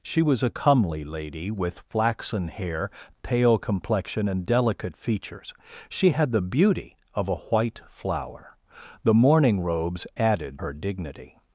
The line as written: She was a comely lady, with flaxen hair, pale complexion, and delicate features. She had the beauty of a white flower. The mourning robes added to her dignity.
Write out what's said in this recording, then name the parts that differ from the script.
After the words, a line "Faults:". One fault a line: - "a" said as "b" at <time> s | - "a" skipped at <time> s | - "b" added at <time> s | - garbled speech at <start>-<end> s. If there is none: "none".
She was a comely lady, with flaxen hair, pale complexion, and delicate features. She had the beauty of a white flower. The mourning robes added her dignity.
Faults:
- "to" skipped at 10.6 s